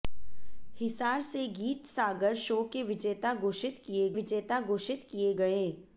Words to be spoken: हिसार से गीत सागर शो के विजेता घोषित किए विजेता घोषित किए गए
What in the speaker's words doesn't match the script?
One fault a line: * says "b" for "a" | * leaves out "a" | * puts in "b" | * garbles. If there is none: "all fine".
all fine